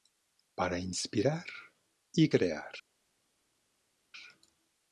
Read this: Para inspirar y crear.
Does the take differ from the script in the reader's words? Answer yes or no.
no